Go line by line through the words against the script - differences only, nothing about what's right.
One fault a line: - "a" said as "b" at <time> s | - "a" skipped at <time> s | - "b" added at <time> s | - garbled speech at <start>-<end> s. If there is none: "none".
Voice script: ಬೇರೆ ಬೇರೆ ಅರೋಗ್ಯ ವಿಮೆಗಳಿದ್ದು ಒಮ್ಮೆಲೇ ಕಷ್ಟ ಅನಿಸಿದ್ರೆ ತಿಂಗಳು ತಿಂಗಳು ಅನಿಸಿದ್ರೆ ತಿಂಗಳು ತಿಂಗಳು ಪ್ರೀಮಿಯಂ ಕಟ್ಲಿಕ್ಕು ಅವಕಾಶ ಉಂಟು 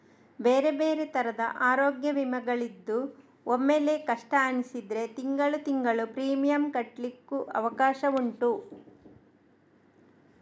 - "ತರದ" added at 1.1 s
- "ಅನಿಸಿದ್ರೆ ತಿಂಗಳು ತಿಂಗಳು" skipped at 6.0 s